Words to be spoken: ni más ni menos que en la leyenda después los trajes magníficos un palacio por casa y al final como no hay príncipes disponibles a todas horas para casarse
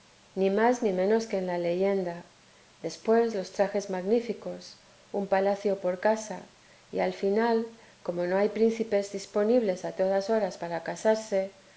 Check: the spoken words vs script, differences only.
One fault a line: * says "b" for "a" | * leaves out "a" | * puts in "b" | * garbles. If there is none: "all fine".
all fine